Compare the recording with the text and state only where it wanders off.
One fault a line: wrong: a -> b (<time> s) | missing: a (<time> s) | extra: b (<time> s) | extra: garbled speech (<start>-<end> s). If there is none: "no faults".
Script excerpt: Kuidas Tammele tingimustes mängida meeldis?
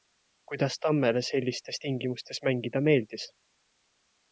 extra: sellistes (1.3 s)